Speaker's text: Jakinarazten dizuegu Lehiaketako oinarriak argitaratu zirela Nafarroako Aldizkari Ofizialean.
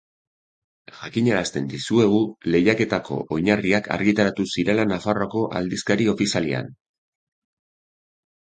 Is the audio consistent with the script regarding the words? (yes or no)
yes